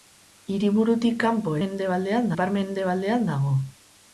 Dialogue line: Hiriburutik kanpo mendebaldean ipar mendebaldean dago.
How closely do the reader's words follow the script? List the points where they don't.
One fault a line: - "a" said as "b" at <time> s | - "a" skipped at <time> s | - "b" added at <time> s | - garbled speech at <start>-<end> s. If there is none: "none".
none